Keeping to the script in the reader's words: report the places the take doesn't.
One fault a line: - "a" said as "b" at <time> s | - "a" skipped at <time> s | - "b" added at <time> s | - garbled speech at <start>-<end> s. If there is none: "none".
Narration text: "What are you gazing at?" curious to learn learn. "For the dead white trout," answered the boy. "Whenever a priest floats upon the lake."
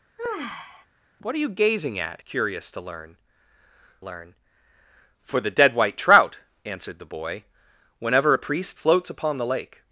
none